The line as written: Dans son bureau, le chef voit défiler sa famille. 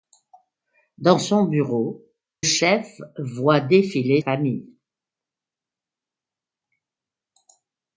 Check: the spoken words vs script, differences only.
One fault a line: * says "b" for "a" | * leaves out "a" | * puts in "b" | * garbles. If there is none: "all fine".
* leaves out "le"
* leaves out "sa"